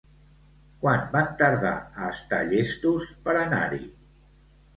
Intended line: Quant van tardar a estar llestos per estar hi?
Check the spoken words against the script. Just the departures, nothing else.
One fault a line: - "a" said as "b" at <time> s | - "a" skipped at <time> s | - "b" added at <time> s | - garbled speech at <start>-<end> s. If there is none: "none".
- "estar" said as "anar" at 3.4 s